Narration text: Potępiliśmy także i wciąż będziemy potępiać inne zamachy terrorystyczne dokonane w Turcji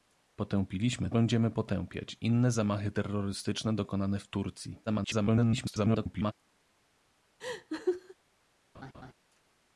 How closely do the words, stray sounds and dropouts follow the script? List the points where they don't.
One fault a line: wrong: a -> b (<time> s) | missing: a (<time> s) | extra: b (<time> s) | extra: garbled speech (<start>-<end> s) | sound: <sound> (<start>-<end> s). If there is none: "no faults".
missing: także i wciąż (1.1 s)
extra: garbled speech (4.9-6.3 s)
sound: laugh (7.4-8.1 s)
sound: laugh (8.7-9.1 s)